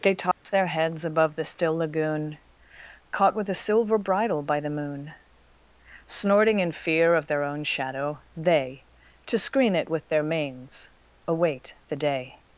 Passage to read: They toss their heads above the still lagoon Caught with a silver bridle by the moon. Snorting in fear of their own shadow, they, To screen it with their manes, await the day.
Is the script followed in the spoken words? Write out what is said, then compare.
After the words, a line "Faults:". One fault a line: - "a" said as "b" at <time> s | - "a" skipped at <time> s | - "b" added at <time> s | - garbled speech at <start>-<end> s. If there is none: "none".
They toss their heads above the still lagoon Caught with a silver bridle by the moon. Snorting in fear of their own shadow, they, To screen it with their manes, await the day.
Faults:
none